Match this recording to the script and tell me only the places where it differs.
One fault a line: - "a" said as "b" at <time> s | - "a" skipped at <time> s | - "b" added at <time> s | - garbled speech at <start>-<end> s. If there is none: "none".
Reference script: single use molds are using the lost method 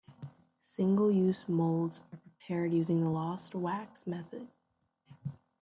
- "prepared" added at 2.2 s
- "wax" added at 3.5 s